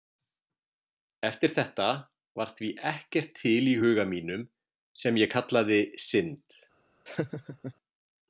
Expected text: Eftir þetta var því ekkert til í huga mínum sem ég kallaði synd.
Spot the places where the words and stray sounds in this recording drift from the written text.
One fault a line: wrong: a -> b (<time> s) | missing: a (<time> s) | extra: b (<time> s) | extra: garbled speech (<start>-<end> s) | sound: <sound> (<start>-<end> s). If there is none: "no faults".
sound: laugh (7.1-7.7 s)